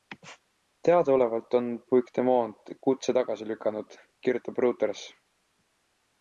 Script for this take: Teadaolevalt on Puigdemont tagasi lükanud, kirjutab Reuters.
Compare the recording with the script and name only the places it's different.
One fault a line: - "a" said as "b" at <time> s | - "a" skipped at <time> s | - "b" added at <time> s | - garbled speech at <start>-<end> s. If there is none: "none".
- "kutse" added at 2.9 s